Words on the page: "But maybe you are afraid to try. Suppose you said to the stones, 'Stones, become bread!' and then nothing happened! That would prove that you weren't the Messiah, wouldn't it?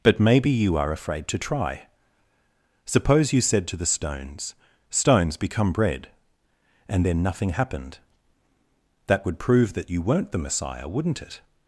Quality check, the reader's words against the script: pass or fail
pass